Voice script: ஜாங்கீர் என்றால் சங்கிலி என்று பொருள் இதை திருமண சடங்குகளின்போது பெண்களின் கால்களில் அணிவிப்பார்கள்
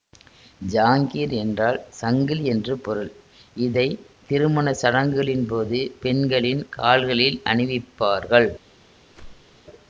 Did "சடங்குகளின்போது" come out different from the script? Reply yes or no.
no